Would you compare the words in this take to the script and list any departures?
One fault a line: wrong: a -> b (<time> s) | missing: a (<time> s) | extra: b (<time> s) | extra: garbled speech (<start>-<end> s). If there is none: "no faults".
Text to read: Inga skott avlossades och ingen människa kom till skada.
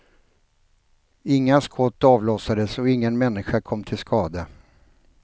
no faults